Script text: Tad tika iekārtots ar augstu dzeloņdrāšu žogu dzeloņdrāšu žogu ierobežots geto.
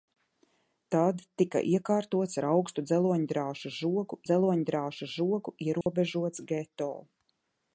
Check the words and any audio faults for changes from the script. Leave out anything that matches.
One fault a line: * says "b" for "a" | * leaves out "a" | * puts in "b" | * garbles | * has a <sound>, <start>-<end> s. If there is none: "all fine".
* has a dropout, 5.8-5.9 s